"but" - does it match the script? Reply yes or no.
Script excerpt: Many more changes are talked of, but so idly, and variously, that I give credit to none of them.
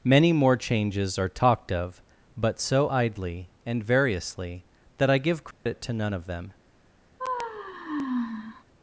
yes